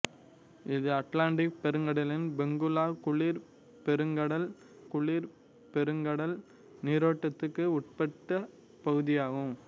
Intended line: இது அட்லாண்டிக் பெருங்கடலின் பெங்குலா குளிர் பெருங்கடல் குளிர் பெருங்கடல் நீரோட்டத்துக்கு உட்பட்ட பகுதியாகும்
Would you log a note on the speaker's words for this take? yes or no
no